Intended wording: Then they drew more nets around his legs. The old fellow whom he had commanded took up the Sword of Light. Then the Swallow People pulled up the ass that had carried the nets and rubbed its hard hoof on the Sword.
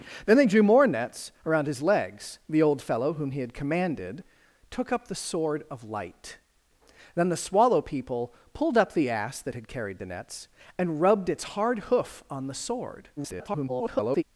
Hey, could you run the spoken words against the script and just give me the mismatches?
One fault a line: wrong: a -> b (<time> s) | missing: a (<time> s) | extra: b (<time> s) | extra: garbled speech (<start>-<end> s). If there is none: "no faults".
extra: garbled speech (13.2-14.2 s)